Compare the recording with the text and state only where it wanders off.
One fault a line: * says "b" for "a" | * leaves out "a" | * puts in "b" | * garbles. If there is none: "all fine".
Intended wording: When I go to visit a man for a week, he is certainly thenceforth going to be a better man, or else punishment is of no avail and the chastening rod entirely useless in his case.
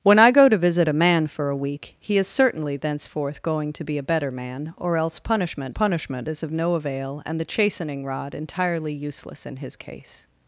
* puts in "punishment"